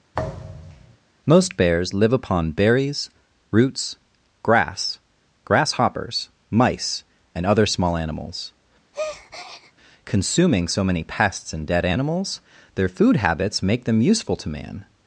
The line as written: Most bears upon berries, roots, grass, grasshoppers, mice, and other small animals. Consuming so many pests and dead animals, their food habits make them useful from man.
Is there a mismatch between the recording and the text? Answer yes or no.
yes